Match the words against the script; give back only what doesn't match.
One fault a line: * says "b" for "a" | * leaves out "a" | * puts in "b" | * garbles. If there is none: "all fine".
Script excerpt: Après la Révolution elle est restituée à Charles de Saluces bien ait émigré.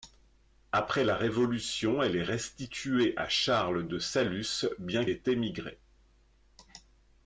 all fine